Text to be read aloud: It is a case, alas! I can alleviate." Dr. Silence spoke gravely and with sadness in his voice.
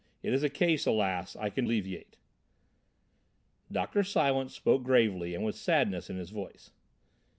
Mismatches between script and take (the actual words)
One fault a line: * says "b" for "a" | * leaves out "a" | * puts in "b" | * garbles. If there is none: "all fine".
all fine